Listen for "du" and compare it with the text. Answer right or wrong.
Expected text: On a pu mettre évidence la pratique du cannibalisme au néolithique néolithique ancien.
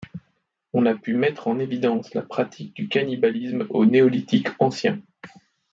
right